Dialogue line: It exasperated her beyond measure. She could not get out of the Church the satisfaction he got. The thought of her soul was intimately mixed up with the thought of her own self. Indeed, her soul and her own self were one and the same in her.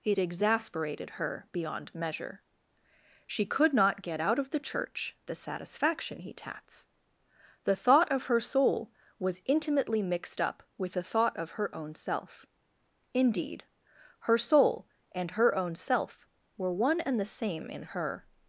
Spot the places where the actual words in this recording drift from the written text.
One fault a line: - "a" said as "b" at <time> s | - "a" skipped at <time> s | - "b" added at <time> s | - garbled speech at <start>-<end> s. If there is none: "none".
- "got" said as "tats" at 6.3 s